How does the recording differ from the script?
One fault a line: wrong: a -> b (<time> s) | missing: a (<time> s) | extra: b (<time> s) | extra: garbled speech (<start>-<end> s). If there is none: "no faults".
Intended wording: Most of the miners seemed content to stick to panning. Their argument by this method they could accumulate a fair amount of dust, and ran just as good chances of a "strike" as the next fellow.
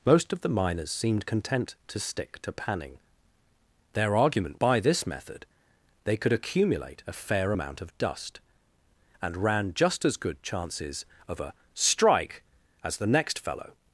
no faults